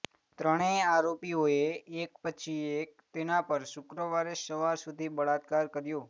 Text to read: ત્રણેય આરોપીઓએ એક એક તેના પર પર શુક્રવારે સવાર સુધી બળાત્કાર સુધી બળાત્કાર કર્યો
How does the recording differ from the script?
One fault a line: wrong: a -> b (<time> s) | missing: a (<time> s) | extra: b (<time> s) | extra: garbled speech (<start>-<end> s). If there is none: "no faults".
extra: પછી (2.2 s)
missing: પર (3.6 s)
missing: સુધી બળાત્કાર (5.7 s)